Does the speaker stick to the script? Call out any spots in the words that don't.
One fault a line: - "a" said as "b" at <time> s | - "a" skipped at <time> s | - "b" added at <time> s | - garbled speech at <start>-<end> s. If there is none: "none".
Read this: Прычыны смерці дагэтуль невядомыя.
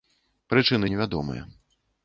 - "смерці дагэтуль" skipped at 0.9 s